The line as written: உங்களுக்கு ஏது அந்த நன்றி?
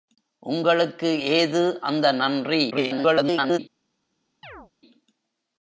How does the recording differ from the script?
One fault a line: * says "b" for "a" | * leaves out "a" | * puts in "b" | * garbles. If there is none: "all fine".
* garbles